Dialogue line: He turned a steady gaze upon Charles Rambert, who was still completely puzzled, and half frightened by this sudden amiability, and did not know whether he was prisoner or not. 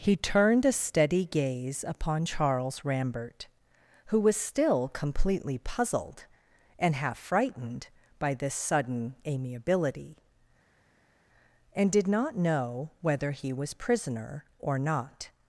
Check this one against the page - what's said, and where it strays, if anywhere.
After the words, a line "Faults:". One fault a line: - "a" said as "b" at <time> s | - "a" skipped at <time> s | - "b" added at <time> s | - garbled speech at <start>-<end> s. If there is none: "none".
He turned a steady gaze upon Charles Rambert, who was still completely puzzled, and half frightened by this sudden amiability, and did not know whether he was prisoner or not.
Faults:
none